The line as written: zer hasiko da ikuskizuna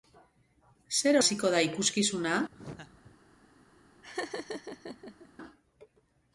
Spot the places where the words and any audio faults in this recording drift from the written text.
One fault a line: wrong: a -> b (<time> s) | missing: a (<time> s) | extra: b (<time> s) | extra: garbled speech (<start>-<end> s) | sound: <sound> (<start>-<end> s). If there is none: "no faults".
sound: laugh (2.5-3.2 s)
sound: laugh (4.0-5.3 s)